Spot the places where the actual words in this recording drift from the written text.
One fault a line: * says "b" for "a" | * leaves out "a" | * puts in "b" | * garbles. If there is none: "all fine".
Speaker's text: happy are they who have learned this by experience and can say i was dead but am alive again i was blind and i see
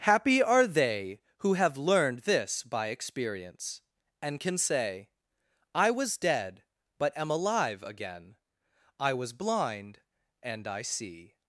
all fine